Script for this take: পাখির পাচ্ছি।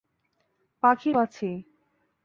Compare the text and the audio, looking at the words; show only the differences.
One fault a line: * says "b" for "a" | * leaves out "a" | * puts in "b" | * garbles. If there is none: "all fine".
all fine